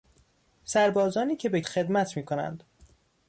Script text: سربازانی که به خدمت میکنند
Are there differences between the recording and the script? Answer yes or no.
no